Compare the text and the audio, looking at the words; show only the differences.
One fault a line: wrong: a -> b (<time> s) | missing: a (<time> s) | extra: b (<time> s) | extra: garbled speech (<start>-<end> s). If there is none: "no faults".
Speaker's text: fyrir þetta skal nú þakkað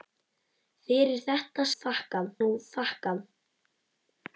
wrong: skal -> þakkað (1.8 s)